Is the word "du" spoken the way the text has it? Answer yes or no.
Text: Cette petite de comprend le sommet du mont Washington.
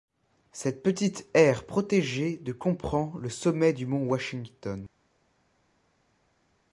yes